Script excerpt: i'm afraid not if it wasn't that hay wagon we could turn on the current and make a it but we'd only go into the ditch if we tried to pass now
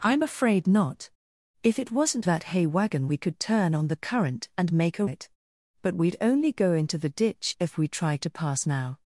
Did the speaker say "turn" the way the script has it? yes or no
yes